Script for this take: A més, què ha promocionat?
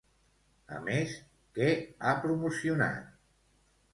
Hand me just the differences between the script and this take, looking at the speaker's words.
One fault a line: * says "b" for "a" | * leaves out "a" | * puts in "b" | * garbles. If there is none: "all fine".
all fine